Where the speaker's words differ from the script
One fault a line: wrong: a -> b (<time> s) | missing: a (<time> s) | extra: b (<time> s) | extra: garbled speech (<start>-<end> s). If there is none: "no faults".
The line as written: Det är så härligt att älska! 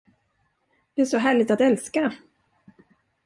no faults